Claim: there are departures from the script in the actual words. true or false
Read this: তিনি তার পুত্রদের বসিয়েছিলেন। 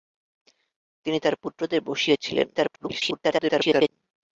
true